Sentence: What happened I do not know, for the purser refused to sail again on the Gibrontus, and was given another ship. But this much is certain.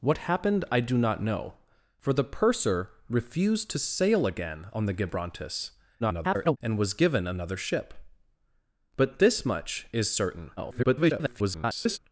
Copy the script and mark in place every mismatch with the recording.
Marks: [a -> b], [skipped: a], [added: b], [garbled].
What happened I do not know, for the purser refused to sail again on the Gibrontus, [garbled] and was given another ship. But this much is certain. [garbled]